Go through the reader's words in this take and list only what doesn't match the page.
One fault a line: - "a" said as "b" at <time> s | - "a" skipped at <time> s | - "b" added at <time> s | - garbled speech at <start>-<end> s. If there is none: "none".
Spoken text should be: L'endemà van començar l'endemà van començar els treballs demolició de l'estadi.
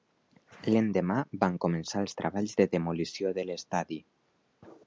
- "l'endemà van començar" skipped at 2.0 s
- "de" added at 2.6 s